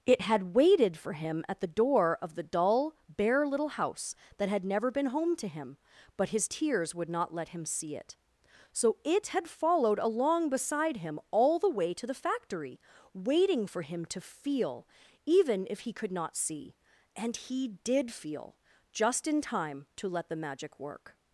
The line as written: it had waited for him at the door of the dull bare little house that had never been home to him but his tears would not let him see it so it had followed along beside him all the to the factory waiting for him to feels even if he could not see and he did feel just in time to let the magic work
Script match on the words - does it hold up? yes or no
no